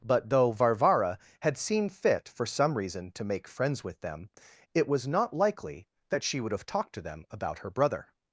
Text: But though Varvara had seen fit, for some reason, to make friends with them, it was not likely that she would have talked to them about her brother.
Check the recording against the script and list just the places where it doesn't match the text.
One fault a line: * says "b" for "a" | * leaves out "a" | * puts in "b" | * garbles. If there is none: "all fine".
all fine